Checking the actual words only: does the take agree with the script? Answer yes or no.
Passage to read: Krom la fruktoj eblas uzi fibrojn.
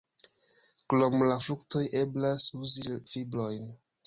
yes